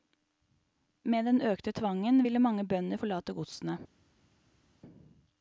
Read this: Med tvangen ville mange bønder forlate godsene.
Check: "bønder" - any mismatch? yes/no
no